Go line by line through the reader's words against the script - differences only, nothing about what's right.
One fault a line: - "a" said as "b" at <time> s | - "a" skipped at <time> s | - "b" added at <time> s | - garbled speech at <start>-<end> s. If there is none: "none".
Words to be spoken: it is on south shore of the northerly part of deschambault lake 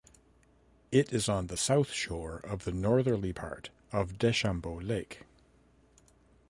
- "the" added at 1.4 s